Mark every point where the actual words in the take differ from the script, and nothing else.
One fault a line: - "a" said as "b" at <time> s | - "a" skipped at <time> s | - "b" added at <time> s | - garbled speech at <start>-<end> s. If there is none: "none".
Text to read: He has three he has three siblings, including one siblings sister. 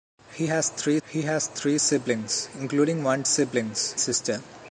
none